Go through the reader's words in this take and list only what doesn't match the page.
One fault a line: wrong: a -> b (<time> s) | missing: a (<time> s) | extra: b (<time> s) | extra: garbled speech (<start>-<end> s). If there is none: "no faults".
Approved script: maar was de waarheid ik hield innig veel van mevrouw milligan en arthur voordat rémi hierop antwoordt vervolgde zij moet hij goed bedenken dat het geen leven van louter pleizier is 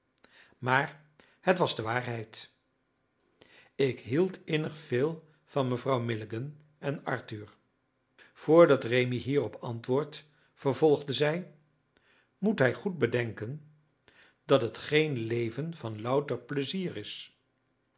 extra: het (1.4 s)